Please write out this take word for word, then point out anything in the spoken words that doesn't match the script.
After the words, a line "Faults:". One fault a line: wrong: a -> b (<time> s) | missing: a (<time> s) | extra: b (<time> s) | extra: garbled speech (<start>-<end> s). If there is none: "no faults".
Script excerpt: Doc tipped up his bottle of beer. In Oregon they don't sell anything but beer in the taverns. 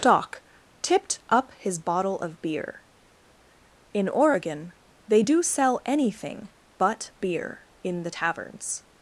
Doc tipped up his bottle of beer. In Oregon they do sell anything but beer in the taverns.
Faults:
wrong: don't -> do (5.2 s)